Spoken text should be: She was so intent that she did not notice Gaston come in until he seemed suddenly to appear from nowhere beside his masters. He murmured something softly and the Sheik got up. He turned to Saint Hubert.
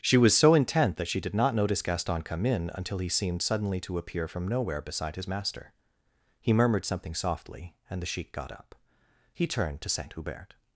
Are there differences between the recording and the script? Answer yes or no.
yes